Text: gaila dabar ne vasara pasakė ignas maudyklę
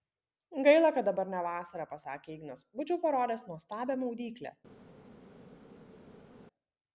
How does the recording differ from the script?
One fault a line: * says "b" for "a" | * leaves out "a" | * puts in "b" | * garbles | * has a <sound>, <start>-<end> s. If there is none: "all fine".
* puts in "kad"
* puts in "būčiau parodęs nuostabią"